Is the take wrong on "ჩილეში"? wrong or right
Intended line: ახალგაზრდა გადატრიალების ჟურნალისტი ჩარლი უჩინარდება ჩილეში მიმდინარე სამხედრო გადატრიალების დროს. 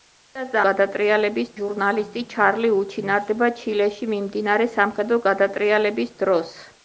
right